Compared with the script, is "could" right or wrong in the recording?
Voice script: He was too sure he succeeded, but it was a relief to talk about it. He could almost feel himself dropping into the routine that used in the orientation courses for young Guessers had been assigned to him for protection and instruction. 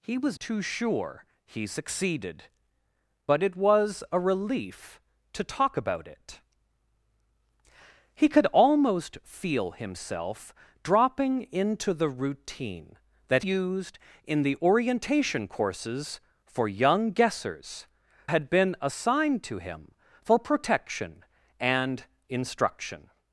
right